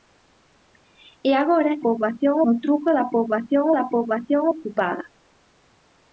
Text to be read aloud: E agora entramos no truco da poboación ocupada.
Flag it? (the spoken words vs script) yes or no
yes